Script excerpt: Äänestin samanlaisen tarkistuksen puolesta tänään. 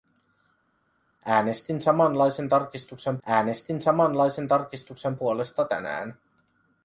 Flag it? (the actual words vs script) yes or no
yes